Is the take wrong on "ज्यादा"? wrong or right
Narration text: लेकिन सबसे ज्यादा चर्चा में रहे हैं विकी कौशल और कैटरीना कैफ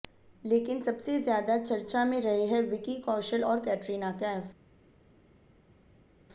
right